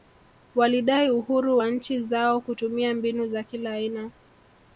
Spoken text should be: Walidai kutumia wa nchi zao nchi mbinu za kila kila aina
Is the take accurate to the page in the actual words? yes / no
no